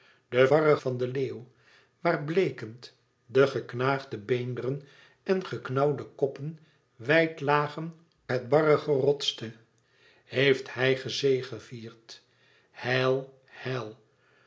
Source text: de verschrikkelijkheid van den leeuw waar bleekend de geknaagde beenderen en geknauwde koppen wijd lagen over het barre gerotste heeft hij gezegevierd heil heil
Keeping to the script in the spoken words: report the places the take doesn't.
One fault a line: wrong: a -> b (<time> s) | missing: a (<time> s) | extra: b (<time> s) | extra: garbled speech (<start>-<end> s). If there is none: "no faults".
wrong: verschrikkelijkheid -> barre (0.5 s)
missing: over (7.9 s)